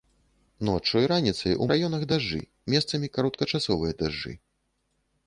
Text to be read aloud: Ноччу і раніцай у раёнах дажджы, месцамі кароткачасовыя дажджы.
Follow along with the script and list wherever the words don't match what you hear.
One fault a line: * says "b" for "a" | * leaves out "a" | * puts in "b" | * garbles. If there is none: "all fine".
all fine